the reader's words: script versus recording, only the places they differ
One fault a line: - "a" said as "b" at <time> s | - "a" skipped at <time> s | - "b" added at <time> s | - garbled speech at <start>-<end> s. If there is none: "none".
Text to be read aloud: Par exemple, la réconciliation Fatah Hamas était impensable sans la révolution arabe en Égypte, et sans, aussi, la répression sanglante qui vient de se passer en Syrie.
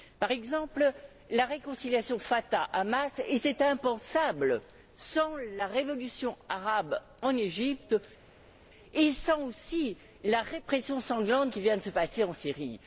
none